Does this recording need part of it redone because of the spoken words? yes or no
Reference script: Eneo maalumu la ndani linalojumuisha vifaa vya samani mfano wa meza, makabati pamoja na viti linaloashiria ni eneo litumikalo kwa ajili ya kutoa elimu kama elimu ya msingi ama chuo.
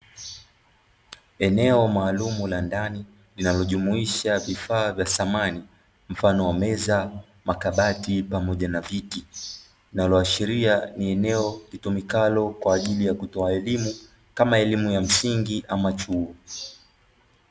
no